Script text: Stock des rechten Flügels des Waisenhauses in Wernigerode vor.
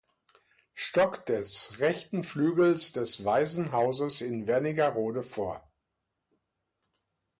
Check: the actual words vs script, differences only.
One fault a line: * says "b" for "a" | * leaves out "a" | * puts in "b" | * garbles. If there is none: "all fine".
all fine